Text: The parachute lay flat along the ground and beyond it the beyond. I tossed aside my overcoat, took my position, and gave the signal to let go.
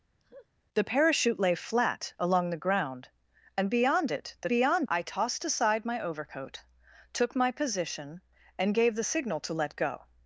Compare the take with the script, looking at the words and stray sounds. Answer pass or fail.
fail